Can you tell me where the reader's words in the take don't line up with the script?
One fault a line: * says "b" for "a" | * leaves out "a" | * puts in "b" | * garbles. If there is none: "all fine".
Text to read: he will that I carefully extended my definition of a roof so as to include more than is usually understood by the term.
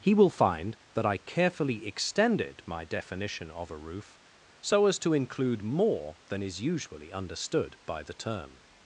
* puts in "find"